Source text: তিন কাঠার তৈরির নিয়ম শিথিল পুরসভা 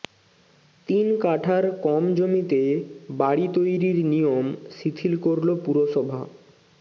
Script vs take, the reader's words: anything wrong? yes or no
yes